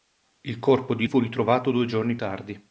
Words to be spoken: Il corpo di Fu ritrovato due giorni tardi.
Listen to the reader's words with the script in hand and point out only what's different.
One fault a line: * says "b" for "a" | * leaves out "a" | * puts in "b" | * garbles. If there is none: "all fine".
all fine